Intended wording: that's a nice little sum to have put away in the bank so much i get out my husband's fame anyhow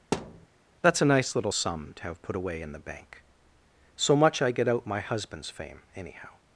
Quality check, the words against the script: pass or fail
pass